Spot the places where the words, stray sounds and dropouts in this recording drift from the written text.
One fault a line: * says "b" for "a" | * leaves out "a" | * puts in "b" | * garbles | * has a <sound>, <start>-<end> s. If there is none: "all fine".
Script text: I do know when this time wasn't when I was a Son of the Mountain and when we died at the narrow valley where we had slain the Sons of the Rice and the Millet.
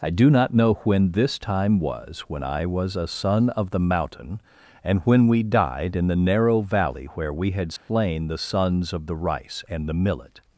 * puts in "not"
* says "was" for "wasn't"
* says "in" for "at"
* has a dropout, 7.8-7.9 s